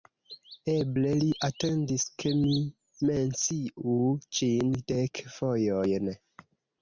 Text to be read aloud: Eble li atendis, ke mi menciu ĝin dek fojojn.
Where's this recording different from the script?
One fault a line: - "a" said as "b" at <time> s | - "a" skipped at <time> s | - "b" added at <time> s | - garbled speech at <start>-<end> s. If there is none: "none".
none